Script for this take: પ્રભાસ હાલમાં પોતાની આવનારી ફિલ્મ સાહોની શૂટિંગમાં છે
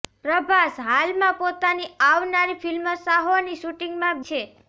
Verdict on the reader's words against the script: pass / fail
pass